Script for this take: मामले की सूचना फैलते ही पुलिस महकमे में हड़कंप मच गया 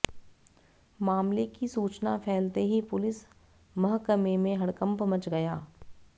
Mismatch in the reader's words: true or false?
false